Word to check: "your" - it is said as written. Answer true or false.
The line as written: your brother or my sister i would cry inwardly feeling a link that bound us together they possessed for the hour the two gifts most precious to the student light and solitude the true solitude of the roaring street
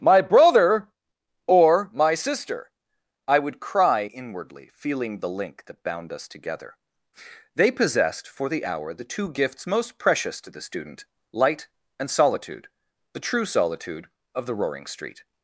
false